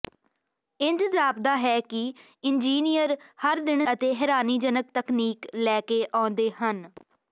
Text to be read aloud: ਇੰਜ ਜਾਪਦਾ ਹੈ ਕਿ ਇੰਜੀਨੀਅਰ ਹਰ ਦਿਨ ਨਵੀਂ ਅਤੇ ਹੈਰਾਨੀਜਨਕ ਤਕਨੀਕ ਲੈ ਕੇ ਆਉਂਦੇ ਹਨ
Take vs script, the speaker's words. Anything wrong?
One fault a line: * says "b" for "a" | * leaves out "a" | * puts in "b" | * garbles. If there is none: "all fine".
* leaves out "ਨਵੀਂ"